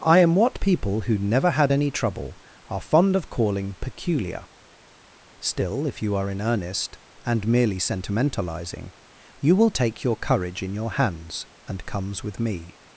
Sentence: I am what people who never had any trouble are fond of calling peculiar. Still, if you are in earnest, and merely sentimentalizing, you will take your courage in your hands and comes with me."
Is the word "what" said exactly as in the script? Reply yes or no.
yes